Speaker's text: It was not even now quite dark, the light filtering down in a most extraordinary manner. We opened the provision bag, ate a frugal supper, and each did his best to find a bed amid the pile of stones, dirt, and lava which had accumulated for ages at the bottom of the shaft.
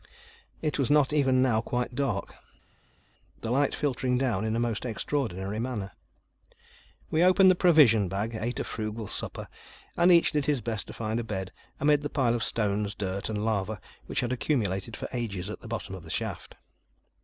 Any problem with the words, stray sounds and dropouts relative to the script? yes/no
no